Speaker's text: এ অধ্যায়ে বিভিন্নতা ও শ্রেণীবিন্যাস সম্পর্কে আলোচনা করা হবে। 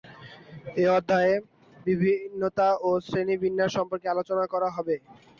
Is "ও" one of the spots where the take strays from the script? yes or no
no